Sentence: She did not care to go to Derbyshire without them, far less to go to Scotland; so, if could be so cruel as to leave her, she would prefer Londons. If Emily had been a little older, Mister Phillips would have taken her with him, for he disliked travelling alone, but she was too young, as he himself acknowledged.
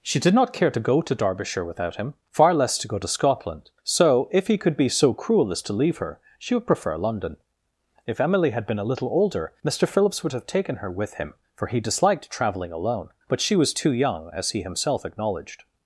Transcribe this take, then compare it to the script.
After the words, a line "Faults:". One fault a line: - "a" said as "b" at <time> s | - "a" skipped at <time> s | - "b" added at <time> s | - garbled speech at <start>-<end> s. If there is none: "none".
She did not care to go to Derbyshire without him, far less to go to Scotland; so, if he could be so cruel as to leave her, she would prefer London. If Emily had been a little older, Mister Phillips would have taken her with him, for he disliked travelling alone, but she was too young, as he himself acknowledged.
Faults:
- "them" said as "him" at 2.0 s
- "he" added at 4.5 s
- "Londons" said as "London" at 7.0 s